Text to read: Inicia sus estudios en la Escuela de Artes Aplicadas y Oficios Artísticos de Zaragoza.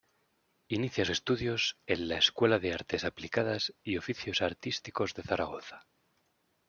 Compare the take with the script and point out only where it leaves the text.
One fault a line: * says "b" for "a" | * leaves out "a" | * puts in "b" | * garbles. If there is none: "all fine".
* leaves out "sus"